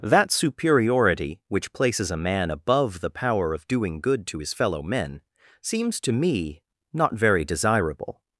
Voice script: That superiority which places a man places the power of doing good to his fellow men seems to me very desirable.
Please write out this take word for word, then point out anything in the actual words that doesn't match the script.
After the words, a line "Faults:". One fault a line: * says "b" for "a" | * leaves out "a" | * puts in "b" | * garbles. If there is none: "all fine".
That superiority which places a man above the power of doing good to his fellow men seems to me not very desirable.
Faults:
* says "above" for "places"
* puts in "not"